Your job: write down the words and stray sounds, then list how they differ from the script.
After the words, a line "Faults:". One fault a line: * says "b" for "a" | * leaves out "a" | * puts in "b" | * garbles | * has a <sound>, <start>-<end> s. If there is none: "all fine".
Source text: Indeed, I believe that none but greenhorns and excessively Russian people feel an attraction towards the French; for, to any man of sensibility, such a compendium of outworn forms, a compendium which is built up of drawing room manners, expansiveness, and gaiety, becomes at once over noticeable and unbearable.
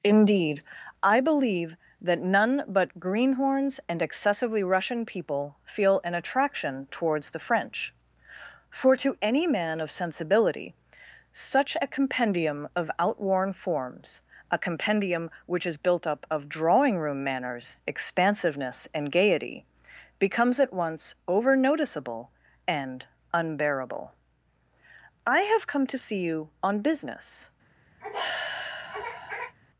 Indeed, I believe that none but greenhorns and excessively Russian people feel an attraction towards the French; for, to any man of sensibility, such a compendium of outworn forms, a compendium which is built up of drawing room manners, expansiveness, and gaiety, becomes at once over noticeable and unbearable. "I have come to see you on business
Faults:
* puts in "I have come to see you on business"
* has a sigh, 28.0-29.6 s